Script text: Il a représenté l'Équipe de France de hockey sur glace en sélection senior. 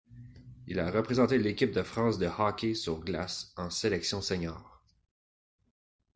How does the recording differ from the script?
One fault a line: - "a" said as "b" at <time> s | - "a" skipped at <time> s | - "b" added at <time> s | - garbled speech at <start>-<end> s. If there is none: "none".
none